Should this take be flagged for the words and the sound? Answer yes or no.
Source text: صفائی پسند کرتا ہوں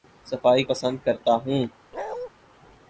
yes